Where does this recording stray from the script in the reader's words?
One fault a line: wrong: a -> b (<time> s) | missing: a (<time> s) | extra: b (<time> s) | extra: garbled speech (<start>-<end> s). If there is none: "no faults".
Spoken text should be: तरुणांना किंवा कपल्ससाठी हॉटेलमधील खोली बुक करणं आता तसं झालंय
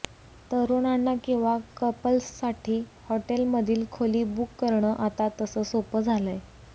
extra: सोपं (5.6 s)